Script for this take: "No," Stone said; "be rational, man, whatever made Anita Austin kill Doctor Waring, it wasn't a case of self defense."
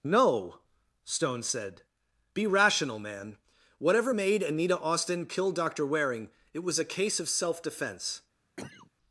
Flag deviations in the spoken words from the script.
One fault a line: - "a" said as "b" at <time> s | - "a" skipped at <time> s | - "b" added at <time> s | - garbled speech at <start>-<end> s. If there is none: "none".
- "wasn't" said as "was" at 6.6 s